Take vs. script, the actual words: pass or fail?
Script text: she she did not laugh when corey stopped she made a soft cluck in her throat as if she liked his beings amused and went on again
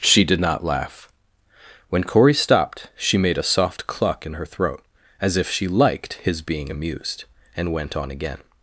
fail